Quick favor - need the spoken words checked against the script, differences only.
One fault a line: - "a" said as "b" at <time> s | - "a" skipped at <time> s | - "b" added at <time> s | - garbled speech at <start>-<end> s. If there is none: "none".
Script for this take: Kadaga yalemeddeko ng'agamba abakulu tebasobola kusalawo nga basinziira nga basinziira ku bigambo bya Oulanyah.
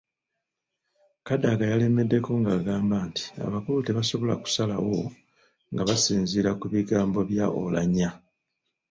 - "nti" added at 3.1 s
- "nga basinziira" skipped at 6.5 s